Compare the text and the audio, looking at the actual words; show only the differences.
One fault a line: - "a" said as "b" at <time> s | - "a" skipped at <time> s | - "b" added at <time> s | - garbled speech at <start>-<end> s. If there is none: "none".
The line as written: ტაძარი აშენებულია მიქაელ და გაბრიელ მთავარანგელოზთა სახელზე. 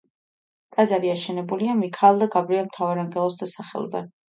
none